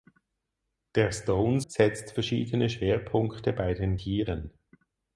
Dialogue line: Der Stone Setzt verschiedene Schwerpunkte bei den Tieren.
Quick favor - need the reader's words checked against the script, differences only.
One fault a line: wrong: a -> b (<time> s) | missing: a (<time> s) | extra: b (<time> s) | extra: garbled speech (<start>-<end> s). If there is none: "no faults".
no faults